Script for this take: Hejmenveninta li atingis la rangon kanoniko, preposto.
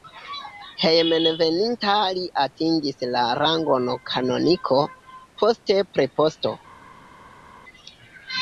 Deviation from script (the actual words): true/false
true